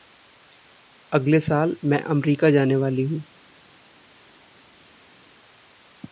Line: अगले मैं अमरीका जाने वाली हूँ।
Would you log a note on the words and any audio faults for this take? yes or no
yes